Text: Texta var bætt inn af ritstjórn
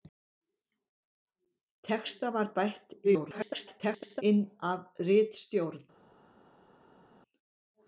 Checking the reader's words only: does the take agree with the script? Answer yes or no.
no